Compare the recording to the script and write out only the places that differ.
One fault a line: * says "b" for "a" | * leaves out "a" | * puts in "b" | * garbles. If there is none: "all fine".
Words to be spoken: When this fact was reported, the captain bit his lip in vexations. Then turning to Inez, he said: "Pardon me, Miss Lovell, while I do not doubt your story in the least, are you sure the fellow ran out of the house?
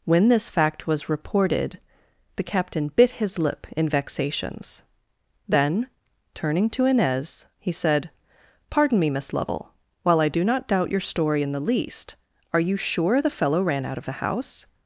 all fine